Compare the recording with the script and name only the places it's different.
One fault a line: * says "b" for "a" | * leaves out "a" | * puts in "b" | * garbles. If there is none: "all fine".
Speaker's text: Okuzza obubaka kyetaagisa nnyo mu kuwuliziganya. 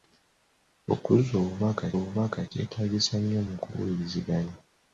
* puts in "obubaka"